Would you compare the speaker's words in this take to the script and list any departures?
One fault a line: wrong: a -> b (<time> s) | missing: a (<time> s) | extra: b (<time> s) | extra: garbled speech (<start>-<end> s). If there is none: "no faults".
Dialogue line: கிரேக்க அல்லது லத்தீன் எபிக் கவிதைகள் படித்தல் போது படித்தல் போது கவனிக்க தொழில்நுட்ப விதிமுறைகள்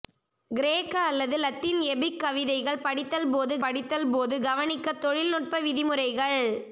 no faults